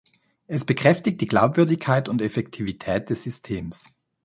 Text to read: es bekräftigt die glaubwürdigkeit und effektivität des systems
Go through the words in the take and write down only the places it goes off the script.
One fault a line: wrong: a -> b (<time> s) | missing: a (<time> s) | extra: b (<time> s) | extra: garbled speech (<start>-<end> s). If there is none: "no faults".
no faults